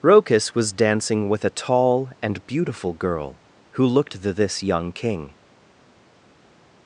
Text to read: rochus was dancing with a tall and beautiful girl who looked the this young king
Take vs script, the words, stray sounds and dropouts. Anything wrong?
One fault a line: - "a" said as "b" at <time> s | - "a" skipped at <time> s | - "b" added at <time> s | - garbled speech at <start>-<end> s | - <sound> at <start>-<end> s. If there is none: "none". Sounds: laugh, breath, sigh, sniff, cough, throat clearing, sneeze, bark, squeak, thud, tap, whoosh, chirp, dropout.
none